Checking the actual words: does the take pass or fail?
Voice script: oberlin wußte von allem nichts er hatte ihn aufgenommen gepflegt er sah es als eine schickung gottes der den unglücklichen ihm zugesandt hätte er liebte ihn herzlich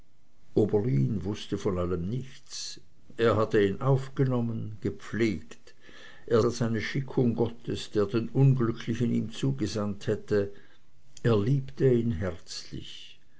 fail